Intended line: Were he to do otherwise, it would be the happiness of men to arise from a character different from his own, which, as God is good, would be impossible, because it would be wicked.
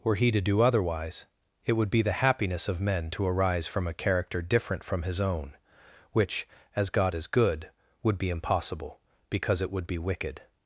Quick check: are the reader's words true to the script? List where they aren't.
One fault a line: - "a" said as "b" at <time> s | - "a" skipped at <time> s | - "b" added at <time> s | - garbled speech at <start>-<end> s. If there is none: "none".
none